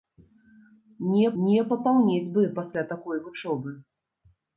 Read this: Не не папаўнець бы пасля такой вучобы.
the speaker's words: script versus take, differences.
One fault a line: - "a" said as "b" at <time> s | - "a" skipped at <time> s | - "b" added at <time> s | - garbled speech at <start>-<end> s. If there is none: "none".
none